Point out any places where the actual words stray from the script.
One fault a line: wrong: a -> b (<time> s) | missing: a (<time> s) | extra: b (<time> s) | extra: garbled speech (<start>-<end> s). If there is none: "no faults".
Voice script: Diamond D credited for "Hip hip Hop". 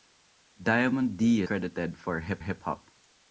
no faults